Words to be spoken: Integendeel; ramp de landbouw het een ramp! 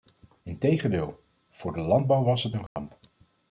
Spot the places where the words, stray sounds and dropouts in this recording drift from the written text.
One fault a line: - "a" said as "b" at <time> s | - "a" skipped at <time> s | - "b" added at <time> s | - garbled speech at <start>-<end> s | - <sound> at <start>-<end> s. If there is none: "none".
- "ramp" said as "voor" at 1.5 s
- "was" added at 2.2 s
- dropout at 2.7-2.8 s